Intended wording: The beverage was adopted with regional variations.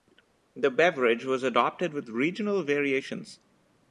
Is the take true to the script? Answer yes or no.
yes